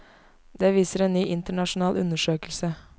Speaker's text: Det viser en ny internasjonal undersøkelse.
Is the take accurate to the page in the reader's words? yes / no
yes